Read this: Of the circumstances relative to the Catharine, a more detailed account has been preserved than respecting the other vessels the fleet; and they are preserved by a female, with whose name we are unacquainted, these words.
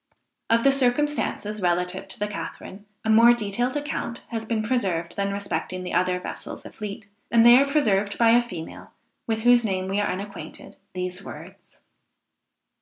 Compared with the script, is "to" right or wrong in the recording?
right